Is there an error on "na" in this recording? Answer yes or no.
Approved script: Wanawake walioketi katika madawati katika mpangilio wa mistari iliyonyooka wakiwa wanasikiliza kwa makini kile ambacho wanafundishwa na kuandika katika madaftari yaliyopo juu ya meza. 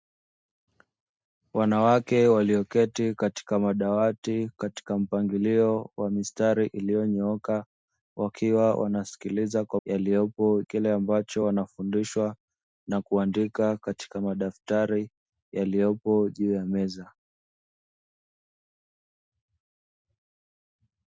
no